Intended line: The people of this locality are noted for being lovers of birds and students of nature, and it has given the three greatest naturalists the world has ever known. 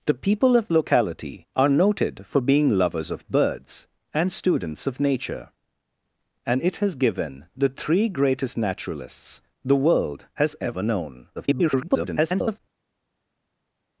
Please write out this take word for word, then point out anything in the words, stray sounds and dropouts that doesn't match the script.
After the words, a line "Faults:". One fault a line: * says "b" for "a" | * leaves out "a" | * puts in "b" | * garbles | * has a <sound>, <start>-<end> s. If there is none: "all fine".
The people of locality are noted for being lovers of birds and students of nature, and it has given the three greatest naturalists the world has ever known. [garbled]
Faults:
* leaves out "this"
* garbles